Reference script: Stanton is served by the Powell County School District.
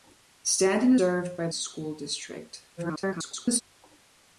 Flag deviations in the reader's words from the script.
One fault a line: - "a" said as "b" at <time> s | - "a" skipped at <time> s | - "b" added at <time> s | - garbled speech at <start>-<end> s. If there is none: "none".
- "is" skipped at 0.9 s
- "the Powell County" skipped at 1.5 s
- garbled speech at 2.8-3.6 s